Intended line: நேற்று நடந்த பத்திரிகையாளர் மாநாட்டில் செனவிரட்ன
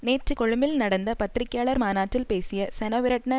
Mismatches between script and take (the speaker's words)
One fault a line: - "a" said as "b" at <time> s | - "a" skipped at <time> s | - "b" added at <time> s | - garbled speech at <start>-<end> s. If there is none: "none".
- "கொழும்பில்" added at 0.3 s
- "பேசிய" added at 2.3 s